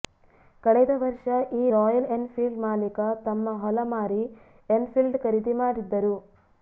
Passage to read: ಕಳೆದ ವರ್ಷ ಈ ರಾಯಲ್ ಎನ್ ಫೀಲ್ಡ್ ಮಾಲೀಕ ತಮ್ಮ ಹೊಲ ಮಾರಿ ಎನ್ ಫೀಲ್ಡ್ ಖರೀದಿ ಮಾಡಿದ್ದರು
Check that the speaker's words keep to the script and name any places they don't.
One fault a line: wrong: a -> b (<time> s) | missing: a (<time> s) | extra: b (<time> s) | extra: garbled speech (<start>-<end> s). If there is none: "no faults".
no faults